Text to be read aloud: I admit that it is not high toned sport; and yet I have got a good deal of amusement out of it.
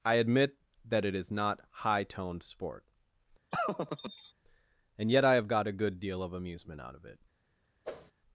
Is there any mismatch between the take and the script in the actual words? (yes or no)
no